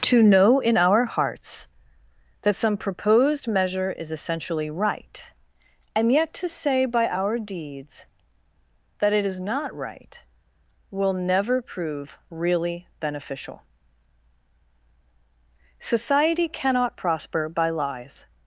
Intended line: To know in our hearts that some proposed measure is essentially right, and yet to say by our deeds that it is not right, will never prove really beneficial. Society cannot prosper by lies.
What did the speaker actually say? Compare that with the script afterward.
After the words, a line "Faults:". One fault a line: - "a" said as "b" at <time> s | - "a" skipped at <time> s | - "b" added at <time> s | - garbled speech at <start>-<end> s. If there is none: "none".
To know in our hearts that some proposed measure is essentially right, and yet to say by our deeds that it is not right, will never prove really beneficial. Society cannot prosper by lies.
Faults:
none